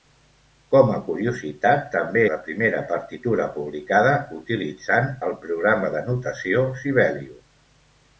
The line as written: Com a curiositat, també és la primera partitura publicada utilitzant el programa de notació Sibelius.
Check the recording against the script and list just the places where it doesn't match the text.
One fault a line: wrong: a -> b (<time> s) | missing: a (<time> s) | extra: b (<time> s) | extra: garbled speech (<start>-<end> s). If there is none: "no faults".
missing: és (2.2 s)